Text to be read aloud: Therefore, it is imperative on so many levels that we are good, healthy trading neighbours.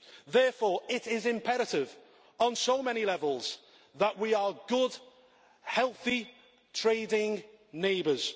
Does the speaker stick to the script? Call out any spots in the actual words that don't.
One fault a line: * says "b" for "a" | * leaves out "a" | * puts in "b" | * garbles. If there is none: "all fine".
all fine